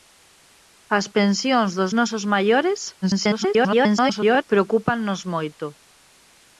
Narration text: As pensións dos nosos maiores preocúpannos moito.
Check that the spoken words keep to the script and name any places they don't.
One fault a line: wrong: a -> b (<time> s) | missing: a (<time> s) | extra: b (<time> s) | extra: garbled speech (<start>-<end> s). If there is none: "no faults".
extra: garbled speech (3.0-4.4 s)